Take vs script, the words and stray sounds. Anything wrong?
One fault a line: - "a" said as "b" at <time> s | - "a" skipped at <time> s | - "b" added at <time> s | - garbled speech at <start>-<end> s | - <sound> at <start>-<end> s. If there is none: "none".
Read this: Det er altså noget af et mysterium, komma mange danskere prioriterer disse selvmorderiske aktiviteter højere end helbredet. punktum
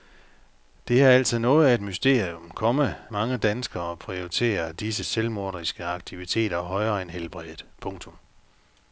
none